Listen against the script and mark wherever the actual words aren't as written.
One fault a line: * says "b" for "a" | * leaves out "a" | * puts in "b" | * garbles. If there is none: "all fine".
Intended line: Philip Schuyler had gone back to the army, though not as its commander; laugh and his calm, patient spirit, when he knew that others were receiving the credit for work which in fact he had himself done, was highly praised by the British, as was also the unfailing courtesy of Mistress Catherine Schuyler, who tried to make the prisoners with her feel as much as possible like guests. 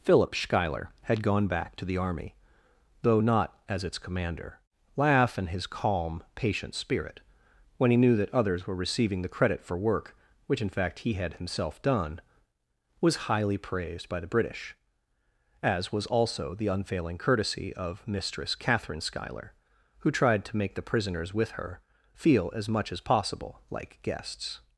all fine